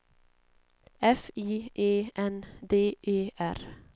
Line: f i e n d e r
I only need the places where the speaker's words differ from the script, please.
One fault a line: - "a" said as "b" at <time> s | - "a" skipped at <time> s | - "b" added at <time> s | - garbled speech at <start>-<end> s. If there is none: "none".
none